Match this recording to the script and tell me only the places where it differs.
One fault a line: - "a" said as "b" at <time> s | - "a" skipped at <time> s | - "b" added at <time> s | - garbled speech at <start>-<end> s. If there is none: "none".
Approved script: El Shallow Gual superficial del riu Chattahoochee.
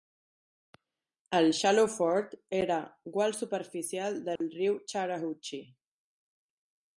- "Ford era" added at 2.0 s